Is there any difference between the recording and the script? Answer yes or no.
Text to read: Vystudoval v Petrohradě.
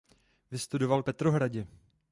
no